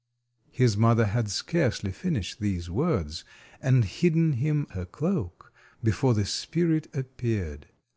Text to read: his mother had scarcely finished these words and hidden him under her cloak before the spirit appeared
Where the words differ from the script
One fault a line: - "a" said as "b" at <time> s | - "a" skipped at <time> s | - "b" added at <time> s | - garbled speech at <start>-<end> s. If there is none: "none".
- "under" skipped at 4.7 s